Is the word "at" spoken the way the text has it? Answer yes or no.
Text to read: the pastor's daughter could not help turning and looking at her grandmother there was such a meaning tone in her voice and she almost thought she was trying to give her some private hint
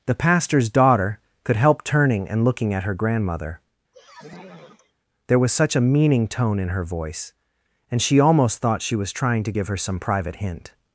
yes